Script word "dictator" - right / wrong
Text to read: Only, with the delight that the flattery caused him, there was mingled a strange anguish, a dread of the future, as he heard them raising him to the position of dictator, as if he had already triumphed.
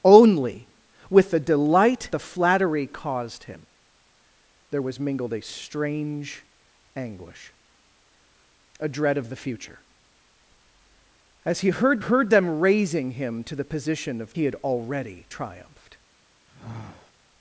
wrong